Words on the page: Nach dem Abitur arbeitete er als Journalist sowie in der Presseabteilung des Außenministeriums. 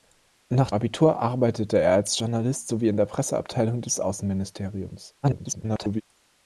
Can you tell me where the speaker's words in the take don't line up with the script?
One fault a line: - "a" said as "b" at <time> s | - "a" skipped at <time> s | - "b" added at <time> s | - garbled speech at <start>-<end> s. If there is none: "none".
- "dem" skipped at 0.7 s
- garbled speech at 5.2-6.0 s